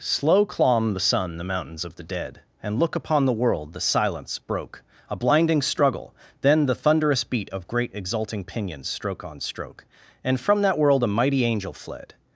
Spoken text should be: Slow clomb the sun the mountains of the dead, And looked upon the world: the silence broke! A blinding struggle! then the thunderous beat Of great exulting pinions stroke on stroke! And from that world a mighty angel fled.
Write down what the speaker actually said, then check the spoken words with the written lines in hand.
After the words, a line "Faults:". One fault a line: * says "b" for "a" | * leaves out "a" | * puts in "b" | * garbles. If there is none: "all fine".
Slow clomb the sun the mountains of the dead, And look upon the world: the silence broke! A blinding struggle! then the thunderous beat Of great exulting pinions stroke on stroke! And from that world a mighty angel fled.
Faults:
* says "look" for "looked"